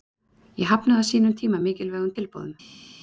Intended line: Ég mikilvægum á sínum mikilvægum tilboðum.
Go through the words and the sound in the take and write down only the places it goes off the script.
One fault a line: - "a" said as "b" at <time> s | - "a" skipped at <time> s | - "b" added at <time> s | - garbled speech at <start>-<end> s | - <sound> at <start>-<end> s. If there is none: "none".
- "mikilvægum" said as "hafnaði" at 0.7 s
- "tíma" added at 1.4 s